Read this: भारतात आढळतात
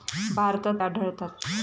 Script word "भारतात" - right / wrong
right